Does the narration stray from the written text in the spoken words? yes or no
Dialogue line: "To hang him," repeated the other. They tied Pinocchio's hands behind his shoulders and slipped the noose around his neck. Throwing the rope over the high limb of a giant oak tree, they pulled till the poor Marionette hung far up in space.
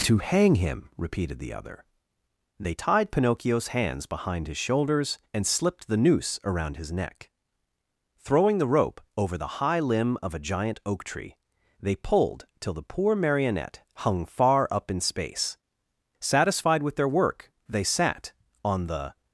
yes